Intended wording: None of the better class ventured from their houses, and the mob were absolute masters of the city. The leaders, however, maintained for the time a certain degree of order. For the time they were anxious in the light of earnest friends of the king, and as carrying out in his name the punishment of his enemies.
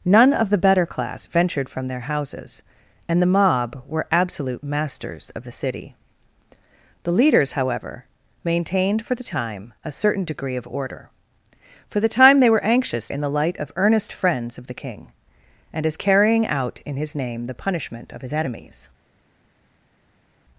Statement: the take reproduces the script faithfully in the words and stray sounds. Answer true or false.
true